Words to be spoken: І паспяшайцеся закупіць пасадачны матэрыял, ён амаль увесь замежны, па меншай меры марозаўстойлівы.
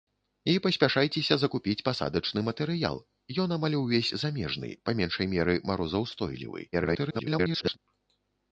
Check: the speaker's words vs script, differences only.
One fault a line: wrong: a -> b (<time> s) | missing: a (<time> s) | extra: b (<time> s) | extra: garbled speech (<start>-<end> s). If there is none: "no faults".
extra: garbled speech (6.7-7.8 s)